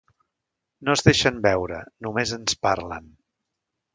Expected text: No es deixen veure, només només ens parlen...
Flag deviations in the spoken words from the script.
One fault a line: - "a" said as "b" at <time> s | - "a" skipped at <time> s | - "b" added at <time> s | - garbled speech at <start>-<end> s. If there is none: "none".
- "només" skipped at 2.3 s